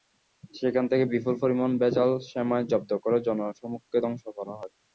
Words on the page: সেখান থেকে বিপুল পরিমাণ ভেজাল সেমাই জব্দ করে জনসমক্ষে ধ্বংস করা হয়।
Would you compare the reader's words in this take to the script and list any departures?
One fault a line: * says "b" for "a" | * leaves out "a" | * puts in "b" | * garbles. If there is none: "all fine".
all fine